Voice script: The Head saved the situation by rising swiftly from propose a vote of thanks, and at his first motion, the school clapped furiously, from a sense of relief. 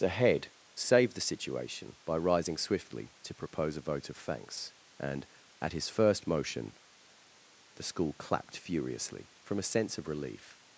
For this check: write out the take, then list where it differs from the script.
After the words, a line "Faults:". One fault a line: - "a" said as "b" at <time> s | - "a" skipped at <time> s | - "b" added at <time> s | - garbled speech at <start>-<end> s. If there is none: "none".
The Head saved the situation by rising swiftly to propose a vote of thanks, and at his first motion, the school clapped furiously, from a sense of relief.
Faults:
- "from" said as "to" at 3.2 s